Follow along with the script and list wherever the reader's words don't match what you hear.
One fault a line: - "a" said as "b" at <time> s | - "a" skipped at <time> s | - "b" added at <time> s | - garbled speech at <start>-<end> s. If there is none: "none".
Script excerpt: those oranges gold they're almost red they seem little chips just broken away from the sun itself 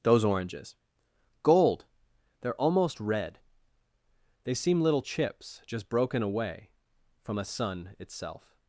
- "the" said as "a" at 7.4 s